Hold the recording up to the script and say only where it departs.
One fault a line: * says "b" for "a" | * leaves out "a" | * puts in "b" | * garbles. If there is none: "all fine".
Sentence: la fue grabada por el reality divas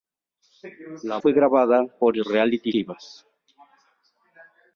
all fine